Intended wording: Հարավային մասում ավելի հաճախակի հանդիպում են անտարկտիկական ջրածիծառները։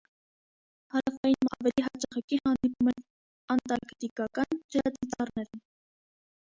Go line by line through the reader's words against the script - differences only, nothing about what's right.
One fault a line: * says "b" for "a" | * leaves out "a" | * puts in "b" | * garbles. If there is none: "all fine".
* leaves out "մասում"